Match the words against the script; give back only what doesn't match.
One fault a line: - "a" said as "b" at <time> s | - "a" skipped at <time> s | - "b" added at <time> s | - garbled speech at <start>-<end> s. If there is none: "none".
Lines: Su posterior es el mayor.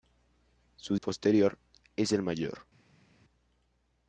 none